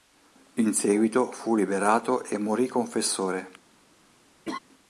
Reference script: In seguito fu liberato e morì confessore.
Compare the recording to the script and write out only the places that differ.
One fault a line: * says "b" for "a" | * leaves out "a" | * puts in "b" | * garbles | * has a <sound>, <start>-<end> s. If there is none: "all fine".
* has a laugh, 4.4-4.6 s